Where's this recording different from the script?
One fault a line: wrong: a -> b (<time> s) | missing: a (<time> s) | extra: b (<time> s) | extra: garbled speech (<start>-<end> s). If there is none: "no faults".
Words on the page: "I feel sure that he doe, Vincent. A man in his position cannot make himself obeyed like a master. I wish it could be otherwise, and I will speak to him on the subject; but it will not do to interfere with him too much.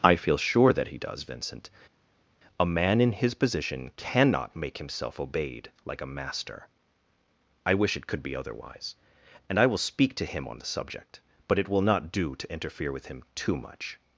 wrong: doe -> does (1.0 s)